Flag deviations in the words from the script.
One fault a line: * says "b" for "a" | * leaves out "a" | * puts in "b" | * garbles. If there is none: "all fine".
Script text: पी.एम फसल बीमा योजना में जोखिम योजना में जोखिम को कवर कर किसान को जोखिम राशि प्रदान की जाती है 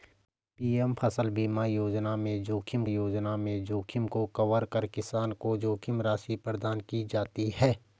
all fine